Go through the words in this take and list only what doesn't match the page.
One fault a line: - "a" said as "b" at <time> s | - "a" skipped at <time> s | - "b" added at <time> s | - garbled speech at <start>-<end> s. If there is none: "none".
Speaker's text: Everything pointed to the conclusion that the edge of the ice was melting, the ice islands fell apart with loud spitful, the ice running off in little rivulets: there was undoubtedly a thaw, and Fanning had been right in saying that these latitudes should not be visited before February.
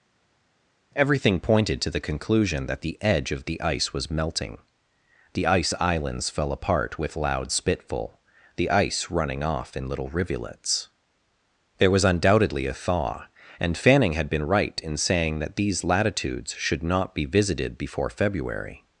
none